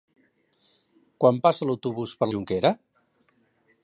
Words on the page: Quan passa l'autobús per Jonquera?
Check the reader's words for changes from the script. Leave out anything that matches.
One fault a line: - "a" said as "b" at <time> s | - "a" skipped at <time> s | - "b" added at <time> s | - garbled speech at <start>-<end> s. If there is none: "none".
none